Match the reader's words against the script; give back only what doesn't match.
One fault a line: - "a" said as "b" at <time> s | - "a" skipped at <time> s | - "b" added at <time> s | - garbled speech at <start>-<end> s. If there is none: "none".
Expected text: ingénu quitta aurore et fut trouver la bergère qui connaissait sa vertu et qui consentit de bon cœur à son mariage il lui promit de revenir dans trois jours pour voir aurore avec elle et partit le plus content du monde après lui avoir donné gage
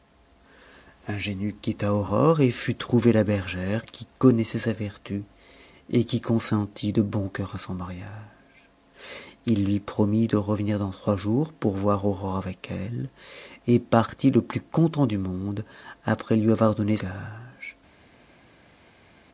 none